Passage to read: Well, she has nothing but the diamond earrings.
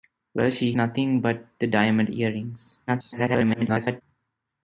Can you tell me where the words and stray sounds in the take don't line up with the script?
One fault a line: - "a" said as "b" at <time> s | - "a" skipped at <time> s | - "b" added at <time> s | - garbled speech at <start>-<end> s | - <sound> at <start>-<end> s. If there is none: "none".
- "has" skipped at 0.7 s
- garbled speech at 2.9-4.0 s